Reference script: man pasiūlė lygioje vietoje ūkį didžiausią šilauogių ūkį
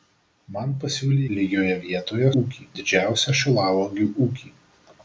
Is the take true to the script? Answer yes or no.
yes